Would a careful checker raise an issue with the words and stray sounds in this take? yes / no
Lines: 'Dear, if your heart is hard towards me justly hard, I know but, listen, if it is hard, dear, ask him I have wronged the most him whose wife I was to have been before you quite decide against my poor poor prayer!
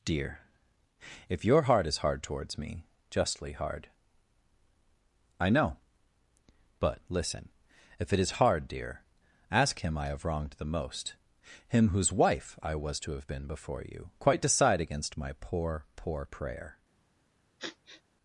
yes